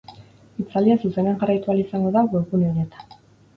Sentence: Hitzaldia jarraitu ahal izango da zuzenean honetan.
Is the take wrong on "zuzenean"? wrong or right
wrong